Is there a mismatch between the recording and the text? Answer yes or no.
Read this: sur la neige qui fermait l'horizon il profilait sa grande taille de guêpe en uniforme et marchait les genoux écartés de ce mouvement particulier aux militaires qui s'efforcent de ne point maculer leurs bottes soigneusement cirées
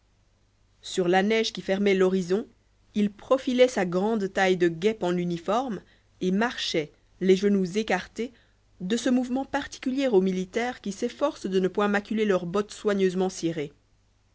no